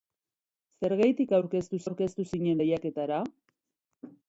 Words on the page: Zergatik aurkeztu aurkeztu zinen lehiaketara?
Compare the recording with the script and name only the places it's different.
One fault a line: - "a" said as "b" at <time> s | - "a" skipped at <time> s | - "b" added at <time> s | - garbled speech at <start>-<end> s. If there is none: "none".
none